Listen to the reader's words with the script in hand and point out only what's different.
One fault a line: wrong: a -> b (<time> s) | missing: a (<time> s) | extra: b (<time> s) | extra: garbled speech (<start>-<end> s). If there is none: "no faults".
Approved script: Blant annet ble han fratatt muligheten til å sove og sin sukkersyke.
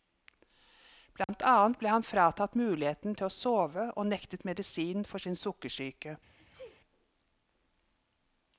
extra: nektet medisin for (4.1 s)